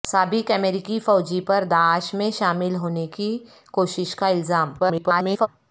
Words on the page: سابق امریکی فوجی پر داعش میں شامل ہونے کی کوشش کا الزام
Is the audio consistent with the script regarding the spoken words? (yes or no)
no